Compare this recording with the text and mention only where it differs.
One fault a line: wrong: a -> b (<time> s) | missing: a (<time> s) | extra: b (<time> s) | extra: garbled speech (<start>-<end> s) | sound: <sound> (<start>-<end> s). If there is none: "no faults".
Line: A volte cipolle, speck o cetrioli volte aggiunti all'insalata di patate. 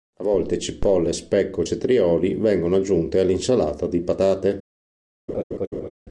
wrong: volte -> vengono (2.3 s)
sound: laugh (5.3-5.9 s)